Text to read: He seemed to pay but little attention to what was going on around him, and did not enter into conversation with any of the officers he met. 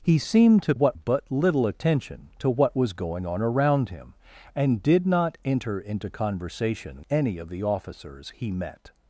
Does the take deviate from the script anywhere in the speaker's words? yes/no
yes